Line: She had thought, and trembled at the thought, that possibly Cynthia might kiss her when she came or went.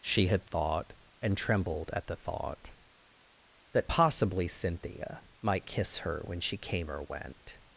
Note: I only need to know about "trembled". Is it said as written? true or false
true